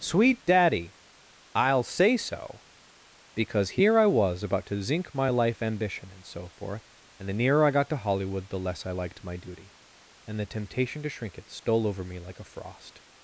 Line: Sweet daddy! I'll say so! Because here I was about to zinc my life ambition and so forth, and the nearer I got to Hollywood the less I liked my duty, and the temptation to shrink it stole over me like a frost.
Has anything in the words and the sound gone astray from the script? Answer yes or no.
no